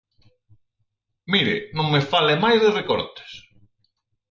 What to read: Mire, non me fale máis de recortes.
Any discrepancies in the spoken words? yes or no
no